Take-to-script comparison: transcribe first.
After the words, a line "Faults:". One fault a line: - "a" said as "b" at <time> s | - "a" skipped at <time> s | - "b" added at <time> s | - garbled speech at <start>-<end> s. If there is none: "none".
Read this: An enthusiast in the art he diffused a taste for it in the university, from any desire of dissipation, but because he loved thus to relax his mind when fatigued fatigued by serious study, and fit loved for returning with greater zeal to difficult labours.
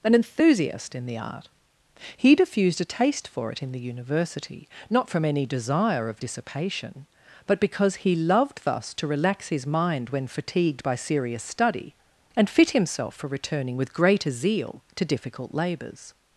An enthusiast in the art he diffused a taste for it in the university, not from any desire of dissipation, but because he loved thus to relax his mind when fatigued by serious study, and fit himself for returning with greater zeal to difficult labours.
Faults:
- "not" added at 4.9 s
- "fatigued" skipped at 10.8 s
- "loved" said as "himself" at 12.7 s